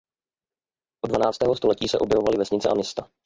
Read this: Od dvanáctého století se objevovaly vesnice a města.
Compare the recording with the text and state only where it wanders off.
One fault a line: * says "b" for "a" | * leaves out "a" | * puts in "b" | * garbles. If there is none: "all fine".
all fine